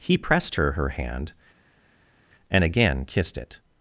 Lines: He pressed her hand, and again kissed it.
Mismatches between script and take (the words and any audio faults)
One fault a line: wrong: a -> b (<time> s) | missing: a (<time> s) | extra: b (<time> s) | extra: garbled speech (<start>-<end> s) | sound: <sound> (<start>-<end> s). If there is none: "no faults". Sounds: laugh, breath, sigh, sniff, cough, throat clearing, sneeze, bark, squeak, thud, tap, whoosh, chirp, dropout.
extra: her (0.7 s)